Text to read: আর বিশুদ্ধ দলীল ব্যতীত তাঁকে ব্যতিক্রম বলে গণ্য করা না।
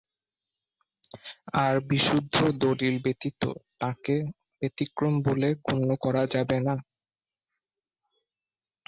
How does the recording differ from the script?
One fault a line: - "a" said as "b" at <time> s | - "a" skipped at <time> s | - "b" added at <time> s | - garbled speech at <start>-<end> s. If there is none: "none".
- "যাবে" added at 6.3 s